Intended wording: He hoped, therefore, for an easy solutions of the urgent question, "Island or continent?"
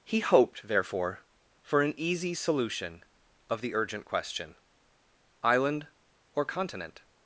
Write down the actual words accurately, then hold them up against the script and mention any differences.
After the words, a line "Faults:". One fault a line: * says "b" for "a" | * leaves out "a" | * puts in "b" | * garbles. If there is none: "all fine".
He hoped, therefore, for an easy solution of the urgent question, "Island or continent?"
Faults:
* says "solution" for "solutions"